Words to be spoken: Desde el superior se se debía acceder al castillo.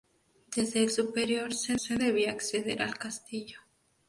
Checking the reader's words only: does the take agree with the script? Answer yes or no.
yes